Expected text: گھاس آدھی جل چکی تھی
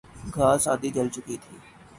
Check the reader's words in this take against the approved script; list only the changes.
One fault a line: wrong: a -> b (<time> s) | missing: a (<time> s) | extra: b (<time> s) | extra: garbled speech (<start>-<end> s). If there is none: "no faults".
no faults